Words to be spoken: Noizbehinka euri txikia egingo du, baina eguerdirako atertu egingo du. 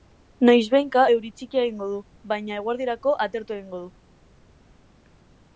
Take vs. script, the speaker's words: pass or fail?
pass